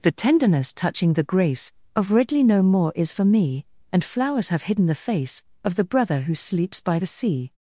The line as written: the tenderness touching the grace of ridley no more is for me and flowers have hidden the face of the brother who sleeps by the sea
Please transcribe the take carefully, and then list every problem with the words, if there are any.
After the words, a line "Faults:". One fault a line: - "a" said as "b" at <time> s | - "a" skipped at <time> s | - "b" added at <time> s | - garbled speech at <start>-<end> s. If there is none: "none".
the tenderness touching the grace of ridley no more is for me and flowers have hidden the face of the brother who sleeps by the sea
Faults:
none